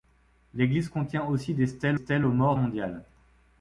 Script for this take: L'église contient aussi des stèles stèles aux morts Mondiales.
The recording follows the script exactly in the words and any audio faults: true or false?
true